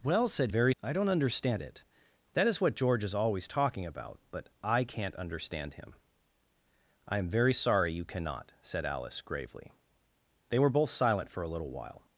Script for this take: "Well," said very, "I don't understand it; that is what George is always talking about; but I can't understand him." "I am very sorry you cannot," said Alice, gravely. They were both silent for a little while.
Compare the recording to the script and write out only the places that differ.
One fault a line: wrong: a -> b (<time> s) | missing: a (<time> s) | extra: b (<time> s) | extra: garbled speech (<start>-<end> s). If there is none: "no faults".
no faults